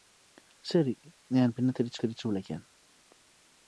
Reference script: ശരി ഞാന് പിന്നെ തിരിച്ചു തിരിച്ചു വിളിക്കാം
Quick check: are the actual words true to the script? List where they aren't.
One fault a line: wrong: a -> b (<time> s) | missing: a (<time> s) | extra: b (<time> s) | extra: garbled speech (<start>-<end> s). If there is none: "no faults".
no faults